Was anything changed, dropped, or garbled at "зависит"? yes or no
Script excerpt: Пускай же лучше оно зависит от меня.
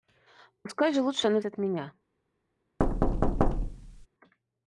yes